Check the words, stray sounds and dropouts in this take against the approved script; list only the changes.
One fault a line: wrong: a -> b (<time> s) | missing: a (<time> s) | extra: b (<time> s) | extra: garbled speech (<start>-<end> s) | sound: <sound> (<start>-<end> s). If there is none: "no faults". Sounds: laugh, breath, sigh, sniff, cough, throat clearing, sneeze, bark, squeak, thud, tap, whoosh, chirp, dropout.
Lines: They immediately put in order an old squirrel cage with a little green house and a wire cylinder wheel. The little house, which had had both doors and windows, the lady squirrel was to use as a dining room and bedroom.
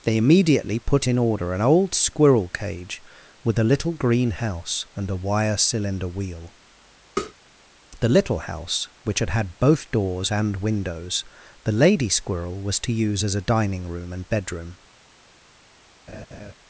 sound: tap (7.2-7.3 s)
sound: laugh (16.1-16.5 s)